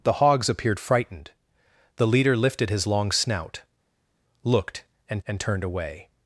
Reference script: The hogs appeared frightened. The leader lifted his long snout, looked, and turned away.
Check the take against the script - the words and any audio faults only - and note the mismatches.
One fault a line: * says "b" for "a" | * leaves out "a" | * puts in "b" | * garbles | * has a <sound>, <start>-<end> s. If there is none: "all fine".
* puts in "and"